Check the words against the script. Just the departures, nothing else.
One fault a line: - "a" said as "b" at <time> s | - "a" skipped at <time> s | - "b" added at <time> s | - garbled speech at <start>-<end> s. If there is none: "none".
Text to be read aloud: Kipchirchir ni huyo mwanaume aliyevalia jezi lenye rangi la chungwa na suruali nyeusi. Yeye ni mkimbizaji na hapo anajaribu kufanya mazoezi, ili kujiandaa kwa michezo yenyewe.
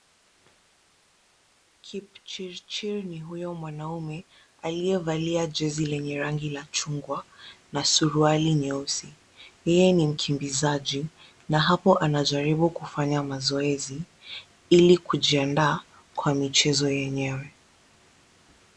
none